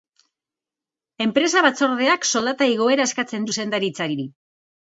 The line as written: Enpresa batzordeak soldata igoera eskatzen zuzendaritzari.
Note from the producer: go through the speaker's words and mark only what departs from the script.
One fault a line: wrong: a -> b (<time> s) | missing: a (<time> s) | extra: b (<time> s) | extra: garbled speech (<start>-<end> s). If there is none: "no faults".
no faults